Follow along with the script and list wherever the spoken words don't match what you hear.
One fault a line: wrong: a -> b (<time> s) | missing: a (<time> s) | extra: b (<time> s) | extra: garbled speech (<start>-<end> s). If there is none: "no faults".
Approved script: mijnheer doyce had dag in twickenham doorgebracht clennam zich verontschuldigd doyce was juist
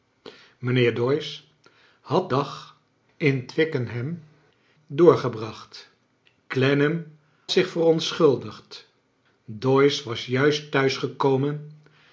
no faults